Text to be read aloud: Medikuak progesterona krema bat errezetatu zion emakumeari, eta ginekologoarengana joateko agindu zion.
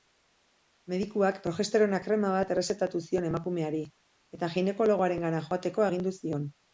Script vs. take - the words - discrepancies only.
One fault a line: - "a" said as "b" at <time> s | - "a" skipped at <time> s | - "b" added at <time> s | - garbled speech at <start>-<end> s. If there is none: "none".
none